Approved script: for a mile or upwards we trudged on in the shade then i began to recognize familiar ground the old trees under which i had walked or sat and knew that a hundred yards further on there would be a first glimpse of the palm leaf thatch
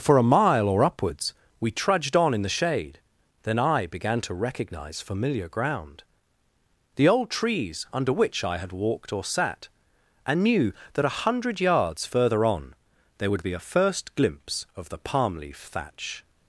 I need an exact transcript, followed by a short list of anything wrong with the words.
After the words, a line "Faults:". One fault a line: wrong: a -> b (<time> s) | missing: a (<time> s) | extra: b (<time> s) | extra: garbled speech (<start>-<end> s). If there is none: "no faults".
for a mile or upwards we trudged on in the shade then i began to recognize familiar ground the old trees under which i had walked or sat and knew that a hundred yards further on there would be a first glimpse of the palm leaf thatch
Faults:
no faults